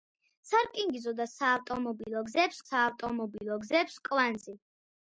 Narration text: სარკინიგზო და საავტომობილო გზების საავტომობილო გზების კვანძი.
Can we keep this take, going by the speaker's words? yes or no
yes